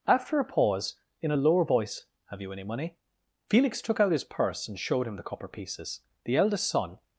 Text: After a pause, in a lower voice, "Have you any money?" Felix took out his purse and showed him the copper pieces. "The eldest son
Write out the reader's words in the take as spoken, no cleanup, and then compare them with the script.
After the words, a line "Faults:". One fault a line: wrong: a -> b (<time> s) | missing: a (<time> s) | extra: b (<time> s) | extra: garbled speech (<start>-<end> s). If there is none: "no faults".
After a pause, in a lower voice, "Have you any money?" Felix took out his purse and showed him the copper pieces. "The eldest son
Faults:
no faults